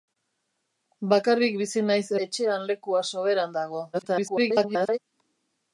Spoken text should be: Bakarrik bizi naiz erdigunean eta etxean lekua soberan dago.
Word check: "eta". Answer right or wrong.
wrong